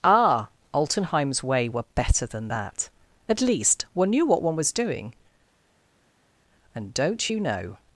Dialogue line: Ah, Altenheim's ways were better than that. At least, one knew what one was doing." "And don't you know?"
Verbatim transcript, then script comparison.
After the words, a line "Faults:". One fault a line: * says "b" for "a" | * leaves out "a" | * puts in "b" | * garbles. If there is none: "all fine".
Ah, Altenheim's way were better than that. At least, one knew what one was doing." "And don't you know?"
Faults:
* says "way" for "ways"